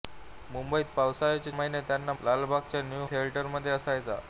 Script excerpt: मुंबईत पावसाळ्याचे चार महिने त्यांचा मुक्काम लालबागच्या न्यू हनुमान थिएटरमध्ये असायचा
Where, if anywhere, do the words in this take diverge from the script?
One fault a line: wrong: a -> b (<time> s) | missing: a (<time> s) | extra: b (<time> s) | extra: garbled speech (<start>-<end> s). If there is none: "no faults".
missing: चार (1.5 s)
missing: मुक्काम (2.1 s)
missing: हनुमान (3.1 s)